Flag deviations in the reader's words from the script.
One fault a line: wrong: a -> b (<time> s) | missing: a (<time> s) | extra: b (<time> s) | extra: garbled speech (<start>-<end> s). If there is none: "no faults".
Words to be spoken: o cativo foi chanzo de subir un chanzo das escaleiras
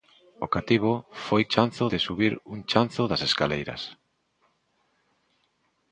no faults